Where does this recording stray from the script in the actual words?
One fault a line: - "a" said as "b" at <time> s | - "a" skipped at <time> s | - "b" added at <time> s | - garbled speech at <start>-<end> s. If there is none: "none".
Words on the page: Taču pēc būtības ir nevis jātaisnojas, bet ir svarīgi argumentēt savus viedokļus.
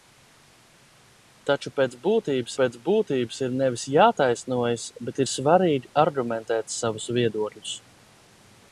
- "pēc būtības" added at 2.6 s